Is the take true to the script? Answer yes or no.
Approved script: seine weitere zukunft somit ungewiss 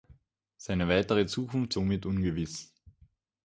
yes